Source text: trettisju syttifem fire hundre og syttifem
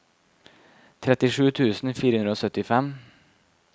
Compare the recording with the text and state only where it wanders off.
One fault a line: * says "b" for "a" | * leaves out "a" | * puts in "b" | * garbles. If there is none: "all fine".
* says "tusen" for "syttifem"